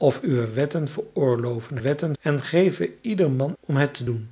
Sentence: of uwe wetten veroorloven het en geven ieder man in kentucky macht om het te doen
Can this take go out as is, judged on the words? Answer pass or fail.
fail